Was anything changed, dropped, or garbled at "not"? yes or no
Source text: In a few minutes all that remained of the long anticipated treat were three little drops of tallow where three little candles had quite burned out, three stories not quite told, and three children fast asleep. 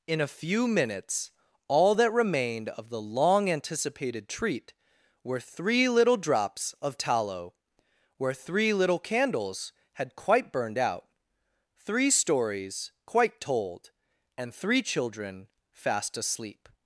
yes